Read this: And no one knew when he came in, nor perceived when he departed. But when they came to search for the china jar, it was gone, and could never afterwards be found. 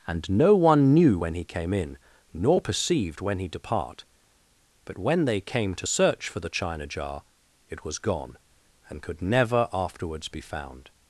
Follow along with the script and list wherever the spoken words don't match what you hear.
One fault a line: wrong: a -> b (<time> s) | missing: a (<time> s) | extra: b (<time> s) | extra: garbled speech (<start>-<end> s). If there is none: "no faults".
wrong: departed -> depart (3.5 s)